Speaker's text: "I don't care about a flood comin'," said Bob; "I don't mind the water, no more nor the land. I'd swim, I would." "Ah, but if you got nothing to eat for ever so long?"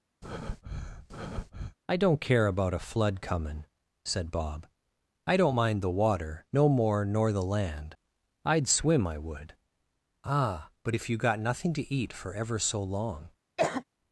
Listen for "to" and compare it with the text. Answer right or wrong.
right